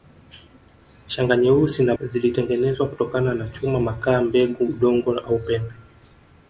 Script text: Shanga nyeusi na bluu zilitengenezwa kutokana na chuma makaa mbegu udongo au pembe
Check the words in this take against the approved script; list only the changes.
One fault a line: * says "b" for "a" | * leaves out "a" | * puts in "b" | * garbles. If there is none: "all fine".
* leaves out "bluu"